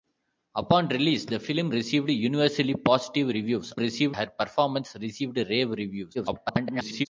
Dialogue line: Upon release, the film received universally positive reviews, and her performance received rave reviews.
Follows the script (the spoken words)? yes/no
no